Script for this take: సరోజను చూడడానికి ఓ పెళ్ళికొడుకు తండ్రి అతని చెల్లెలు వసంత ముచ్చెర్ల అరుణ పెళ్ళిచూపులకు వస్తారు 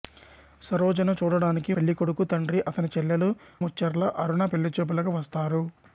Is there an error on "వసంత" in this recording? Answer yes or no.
yes